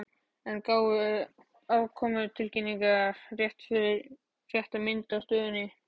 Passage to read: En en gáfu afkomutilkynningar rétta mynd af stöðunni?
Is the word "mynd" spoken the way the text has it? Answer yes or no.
yes